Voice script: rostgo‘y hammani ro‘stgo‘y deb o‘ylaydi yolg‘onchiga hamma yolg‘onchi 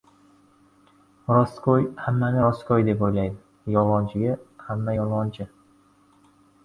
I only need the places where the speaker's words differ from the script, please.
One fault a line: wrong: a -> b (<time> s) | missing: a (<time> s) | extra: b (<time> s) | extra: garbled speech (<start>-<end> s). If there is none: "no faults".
no faults